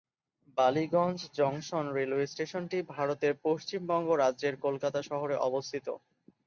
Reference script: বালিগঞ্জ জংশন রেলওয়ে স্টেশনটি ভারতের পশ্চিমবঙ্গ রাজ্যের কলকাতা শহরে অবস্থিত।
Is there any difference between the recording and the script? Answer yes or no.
no